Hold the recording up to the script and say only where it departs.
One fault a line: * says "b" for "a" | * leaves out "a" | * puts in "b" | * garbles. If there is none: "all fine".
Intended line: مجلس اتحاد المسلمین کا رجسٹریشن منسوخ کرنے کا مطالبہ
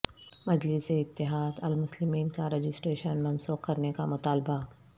all fine